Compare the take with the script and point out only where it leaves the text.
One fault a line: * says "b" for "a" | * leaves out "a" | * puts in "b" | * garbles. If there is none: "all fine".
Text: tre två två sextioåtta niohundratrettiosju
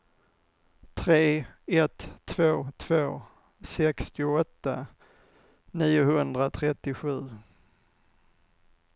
* puts in "ett"